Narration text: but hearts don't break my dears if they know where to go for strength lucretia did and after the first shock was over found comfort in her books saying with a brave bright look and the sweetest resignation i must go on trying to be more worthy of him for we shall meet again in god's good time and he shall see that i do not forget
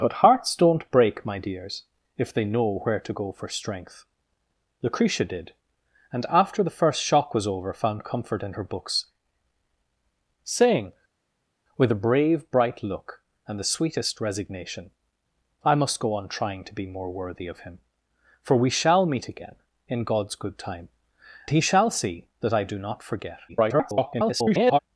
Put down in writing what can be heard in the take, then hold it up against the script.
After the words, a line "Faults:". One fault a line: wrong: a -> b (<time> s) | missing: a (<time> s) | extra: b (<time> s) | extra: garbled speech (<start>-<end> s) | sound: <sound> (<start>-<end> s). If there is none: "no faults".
but hearts don't break my dears if they know where to go for strength lucretia did and after the first shock was over found comfort in her books saying with a brave bright look and the sweetest resignation i must go on trying to be more worthy of him for we shall meet again in god's good time he shall see that i do not forget [garbled]
Faults:
missing: and (20.9 s)
extra: garbled speech (23.5-24.8 s)